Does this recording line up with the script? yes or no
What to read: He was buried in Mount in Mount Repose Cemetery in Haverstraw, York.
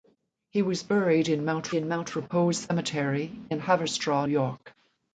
yes